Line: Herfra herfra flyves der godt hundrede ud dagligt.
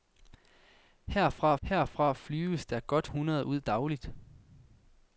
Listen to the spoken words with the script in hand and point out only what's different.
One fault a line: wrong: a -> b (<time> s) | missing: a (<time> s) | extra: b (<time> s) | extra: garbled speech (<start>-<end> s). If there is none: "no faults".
no faults